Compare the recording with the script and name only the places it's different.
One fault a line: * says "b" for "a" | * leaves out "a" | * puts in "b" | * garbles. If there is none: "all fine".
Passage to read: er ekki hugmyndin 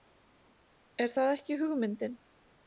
* puts in "það"